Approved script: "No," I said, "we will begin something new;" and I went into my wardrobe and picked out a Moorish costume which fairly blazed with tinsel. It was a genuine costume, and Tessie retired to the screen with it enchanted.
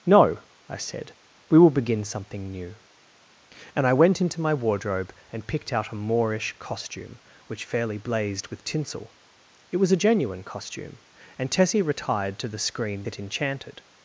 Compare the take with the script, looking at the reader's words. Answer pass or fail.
fail